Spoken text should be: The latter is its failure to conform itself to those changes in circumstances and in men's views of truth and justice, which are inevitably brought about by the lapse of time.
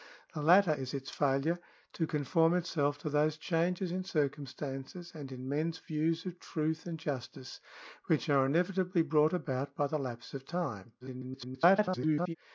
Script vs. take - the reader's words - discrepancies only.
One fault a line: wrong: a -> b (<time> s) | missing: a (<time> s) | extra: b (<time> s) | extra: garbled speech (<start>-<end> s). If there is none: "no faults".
extra: garbled speech (11.0-12.4 s)